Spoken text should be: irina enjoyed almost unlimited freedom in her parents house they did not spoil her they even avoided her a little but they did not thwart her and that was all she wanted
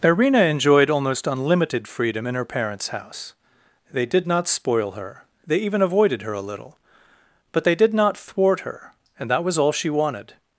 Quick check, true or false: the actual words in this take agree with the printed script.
true